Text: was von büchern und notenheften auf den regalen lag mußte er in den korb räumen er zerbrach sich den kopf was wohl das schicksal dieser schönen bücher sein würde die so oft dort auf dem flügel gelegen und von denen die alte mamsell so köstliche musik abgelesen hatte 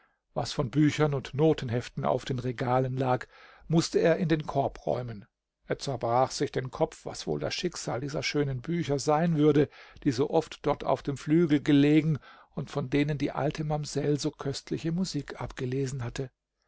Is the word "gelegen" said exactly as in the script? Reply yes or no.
yes